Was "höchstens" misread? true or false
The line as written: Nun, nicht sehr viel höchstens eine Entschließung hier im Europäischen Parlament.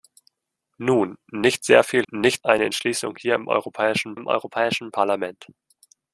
true